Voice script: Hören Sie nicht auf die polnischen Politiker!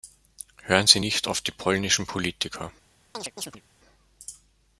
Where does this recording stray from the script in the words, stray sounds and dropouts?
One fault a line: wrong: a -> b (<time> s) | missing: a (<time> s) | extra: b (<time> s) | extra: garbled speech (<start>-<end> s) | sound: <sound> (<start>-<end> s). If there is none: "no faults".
sound: chirp (3.1-3.6 s)